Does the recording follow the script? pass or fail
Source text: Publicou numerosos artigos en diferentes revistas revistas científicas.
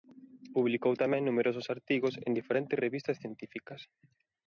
fail